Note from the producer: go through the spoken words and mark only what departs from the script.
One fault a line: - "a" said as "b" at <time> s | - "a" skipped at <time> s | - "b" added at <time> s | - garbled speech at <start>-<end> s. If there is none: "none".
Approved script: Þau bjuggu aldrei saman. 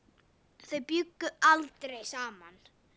none